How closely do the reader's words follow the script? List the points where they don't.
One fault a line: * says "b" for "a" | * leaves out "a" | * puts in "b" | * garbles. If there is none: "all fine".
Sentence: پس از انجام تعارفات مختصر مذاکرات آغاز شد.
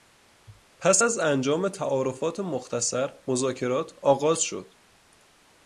all fine